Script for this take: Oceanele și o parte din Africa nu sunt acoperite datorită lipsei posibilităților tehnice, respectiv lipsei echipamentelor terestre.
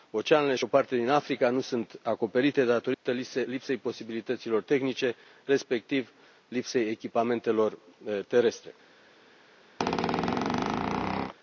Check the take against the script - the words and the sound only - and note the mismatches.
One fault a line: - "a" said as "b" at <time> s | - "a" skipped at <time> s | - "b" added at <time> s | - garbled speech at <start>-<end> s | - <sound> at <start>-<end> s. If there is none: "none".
- dropout at 2.9-3.1 s
- squeak at 9.8-11.3 s